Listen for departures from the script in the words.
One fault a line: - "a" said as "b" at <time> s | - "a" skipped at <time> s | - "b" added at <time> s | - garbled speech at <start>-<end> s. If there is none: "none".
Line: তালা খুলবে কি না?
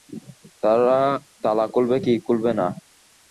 - "খুলবে" added at 2.3 s